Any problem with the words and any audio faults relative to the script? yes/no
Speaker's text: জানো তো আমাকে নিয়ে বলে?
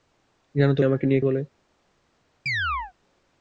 yes